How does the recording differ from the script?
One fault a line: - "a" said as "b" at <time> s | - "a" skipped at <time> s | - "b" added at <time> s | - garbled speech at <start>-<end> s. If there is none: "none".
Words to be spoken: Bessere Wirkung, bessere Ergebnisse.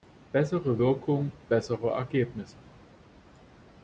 none